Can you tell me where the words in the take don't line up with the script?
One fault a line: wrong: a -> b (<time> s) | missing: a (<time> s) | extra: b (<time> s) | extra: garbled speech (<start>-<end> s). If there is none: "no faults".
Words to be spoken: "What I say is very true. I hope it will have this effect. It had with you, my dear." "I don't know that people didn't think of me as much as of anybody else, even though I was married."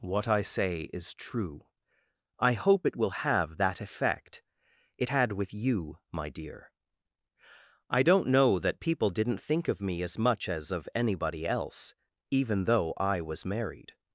missing: very (1.1 s)
wrong: this -> that (3.6 s)